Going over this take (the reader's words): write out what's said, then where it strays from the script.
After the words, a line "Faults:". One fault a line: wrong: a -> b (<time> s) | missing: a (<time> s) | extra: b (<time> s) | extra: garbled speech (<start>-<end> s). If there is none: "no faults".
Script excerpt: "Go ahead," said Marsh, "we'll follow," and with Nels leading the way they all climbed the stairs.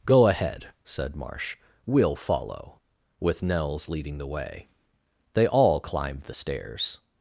"Go ahead," said Marsh, "we'll follow," with Nels leading the way they all climbed the stairs.
Faults:
missing: and (2.8 s)